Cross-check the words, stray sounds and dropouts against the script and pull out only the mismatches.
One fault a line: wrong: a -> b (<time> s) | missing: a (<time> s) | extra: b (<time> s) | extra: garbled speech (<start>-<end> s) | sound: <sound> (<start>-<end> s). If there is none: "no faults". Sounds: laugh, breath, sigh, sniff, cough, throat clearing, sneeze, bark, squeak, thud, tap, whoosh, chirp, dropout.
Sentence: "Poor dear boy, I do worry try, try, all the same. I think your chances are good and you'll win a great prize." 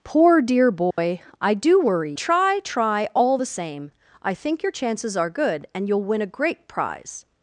sound: dropout (0.9-1.0 s)